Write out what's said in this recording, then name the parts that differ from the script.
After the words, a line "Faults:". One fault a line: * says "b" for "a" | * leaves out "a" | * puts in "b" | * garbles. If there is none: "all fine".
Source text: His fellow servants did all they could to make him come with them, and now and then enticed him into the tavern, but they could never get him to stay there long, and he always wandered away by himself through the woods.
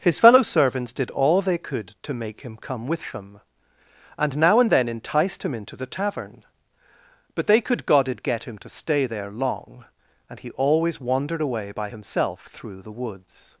His fellow servants did all they could to make him come with them, and now and then enticed him into the tavern, but they could godded get him to stay there long, and he always wandered away by himself through the woods.
Faults:
* says "godded" for "never"